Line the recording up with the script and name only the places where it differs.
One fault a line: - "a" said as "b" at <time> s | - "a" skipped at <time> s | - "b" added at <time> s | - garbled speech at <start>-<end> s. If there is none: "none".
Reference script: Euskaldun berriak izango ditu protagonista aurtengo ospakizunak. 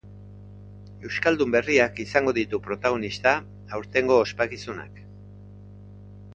none